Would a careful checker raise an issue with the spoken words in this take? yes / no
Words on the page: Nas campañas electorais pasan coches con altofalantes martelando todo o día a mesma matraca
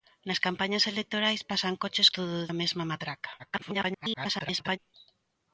yes